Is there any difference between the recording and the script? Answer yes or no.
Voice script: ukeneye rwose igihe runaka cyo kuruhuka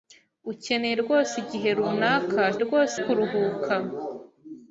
yes